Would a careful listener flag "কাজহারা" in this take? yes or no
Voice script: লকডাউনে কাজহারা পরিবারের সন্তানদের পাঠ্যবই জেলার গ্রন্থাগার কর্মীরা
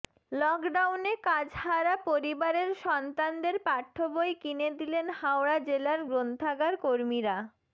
no